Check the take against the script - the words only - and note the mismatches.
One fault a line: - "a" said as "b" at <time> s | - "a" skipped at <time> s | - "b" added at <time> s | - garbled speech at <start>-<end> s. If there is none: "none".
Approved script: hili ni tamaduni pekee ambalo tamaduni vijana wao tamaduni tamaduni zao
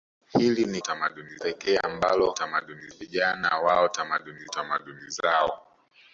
none